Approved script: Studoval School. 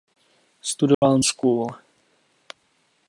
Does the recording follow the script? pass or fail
pass